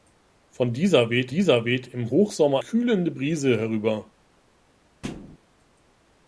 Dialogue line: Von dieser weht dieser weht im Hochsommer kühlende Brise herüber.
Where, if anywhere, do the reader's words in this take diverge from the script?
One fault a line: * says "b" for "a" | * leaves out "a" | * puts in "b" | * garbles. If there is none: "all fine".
all fine